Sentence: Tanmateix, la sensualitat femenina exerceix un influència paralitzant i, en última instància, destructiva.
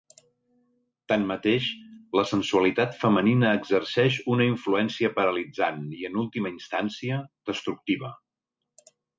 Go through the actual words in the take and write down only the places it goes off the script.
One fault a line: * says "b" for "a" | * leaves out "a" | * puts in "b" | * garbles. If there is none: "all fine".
* says "una" for "un"